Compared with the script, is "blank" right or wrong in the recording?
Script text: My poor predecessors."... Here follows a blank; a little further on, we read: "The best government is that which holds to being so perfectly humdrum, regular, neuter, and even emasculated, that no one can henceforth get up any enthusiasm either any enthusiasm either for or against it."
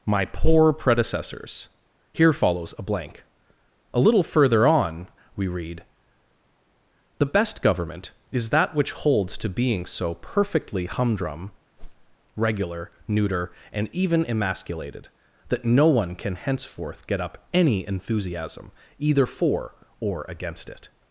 right